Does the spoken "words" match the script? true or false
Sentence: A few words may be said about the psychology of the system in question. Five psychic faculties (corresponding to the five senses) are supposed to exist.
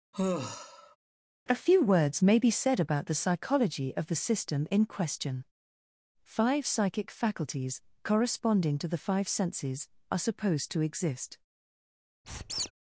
true